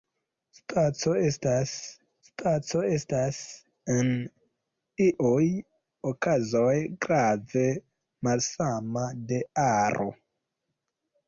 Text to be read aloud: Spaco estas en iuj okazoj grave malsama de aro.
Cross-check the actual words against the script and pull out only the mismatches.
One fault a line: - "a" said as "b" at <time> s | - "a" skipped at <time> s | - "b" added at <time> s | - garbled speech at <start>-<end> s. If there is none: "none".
- "spaco estas" added at 2.3 s